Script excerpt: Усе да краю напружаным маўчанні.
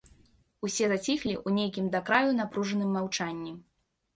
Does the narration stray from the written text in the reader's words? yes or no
yes